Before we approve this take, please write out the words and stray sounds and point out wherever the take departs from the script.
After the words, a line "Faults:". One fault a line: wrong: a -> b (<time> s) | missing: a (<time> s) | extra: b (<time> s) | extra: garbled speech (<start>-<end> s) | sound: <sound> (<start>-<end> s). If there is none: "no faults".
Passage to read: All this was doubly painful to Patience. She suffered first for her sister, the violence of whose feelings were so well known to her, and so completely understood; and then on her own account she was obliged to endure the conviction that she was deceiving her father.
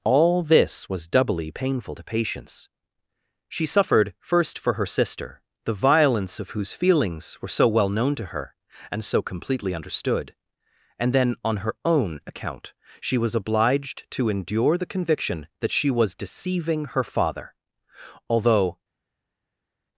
All this was doubly painful to Patience. She suffered first for her sister, the violence of whose feelings were so well known to her, and so completely understood; and then on her own account she was obliged to endure the conviction that she was deceiving her father. Although
Faults:
extra: Although (18.3 s)